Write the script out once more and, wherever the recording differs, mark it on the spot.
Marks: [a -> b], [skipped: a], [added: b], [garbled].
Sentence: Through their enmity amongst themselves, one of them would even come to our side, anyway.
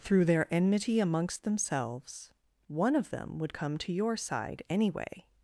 Through their enmity amongst themselves, one of them would [skipped: even] come to [our -> your] side, anyway.